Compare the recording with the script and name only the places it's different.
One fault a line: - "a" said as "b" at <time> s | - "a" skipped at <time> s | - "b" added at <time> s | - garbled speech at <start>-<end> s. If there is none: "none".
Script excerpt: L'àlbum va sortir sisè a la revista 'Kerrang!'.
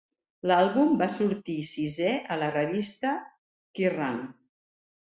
none